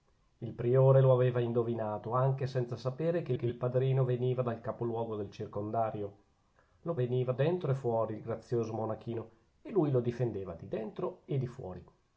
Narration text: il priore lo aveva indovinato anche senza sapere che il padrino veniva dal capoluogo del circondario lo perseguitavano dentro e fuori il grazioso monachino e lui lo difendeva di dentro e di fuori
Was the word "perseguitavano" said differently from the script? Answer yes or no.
yes